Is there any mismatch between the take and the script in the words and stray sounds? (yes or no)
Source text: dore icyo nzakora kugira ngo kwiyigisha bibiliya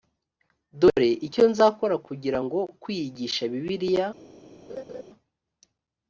yes